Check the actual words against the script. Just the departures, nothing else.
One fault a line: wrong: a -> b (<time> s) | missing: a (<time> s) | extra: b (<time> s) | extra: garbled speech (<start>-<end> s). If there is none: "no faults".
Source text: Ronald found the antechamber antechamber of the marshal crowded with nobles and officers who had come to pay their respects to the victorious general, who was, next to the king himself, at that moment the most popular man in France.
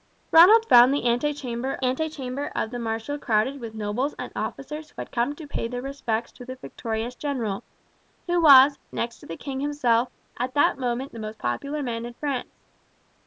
no faults